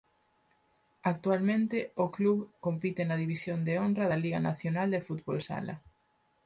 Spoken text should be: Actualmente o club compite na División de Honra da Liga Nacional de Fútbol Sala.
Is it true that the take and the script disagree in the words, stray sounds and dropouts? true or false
false